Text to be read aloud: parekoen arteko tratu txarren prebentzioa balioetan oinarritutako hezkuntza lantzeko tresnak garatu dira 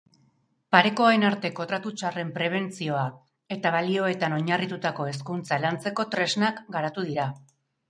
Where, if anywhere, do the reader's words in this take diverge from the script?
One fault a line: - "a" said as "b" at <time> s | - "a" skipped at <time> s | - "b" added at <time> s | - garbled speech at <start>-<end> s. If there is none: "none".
- "eta" added at 3.6 s